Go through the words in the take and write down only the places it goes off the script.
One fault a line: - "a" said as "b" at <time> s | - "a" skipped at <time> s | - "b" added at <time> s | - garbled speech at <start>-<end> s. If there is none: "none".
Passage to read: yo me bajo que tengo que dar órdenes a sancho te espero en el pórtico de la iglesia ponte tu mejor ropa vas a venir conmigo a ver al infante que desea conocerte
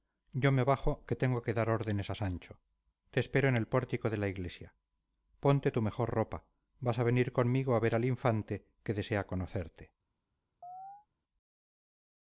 none